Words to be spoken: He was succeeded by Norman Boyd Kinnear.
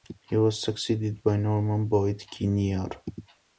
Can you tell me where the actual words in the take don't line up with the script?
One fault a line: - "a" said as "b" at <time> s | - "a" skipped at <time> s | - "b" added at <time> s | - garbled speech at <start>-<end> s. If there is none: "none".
none